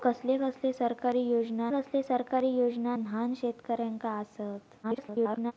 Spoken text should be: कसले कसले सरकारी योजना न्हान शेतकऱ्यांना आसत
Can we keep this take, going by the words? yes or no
no